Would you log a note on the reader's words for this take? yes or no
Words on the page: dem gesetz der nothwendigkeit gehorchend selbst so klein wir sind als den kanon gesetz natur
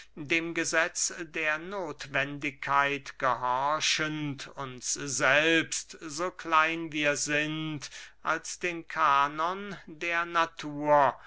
yes